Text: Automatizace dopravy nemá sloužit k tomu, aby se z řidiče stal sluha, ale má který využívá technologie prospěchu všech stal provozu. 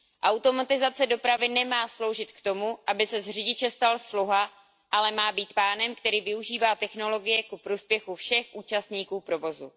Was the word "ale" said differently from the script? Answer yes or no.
no